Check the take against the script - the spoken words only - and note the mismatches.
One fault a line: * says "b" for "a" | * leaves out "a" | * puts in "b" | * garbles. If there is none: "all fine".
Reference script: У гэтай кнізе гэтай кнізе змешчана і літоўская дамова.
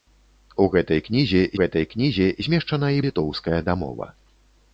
all fine